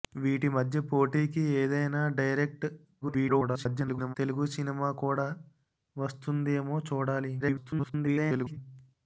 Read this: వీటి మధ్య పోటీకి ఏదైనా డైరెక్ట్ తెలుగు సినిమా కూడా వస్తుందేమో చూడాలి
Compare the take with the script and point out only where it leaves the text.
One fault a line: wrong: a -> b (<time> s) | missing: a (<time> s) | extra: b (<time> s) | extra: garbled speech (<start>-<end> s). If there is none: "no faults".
extra: garbled speech (3.0-4.2 s)
extra: garbled speech (7.4-8.6 s)